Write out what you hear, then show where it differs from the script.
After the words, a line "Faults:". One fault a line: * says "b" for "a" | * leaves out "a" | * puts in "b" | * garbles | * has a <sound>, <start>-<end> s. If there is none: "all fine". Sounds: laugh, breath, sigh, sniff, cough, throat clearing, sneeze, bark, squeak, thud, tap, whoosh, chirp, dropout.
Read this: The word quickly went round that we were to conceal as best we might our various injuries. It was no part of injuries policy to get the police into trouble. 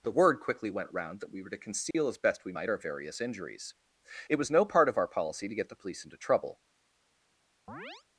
The word quickly went round that we were to conceal as best we might our various injuries. It was no part of our policy to get the police into trouble.
Faults:
* has a dropout, 1.9-1.9 s
* says "our" for "injuries"
* has a chirp, 7.7-8.0 s